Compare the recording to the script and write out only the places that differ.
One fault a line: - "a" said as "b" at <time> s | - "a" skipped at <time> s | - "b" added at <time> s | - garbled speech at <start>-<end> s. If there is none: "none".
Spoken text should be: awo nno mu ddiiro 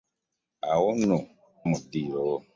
none